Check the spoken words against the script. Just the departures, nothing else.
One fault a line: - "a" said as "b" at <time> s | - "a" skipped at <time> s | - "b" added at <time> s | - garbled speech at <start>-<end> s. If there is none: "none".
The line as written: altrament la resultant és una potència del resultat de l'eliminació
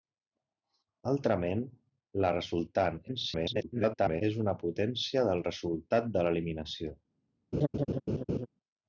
- garbled speech at 3.1-4.2 s